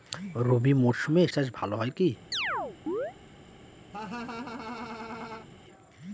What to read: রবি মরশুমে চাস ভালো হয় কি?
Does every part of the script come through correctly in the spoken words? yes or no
yes